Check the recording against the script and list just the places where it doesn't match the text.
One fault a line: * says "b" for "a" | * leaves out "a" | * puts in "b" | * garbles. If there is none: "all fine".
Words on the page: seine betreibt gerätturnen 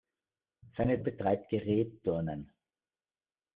all fine